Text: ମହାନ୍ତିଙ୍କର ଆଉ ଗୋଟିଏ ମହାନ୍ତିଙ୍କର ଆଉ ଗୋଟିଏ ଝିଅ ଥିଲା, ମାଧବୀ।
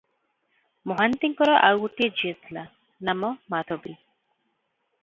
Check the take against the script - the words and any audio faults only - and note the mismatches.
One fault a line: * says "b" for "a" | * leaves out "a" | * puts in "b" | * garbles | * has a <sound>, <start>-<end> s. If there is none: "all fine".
* leaves out "ମହାନ୍ତିଙ୍କର ଆଉ ଗୋଟିଏ"
* puts in "ନାମ"